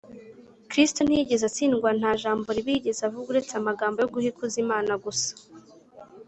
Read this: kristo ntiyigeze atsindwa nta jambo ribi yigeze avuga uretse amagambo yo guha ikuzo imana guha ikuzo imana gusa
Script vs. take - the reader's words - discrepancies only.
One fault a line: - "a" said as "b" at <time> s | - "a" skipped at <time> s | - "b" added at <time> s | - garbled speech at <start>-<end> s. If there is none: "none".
- "guha ikuzo imana" skipped at 4.9 s